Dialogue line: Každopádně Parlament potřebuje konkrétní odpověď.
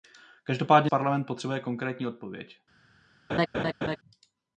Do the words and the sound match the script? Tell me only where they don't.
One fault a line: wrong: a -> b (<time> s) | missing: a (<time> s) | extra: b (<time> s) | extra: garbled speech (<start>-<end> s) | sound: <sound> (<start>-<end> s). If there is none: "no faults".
sound: laugh (3.3-4.0 s)